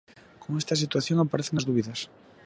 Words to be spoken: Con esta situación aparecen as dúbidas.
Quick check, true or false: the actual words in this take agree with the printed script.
true